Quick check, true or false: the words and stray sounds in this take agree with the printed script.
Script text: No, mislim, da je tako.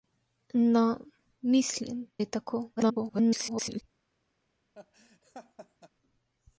false